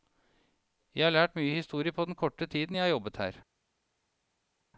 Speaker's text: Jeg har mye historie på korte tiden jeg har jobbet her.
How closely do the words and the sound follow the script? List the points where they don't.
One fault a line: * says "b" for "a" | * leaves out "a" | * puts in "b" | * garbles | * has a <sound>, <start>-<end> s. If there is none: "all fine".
* puts in "lært"
* puts in "den"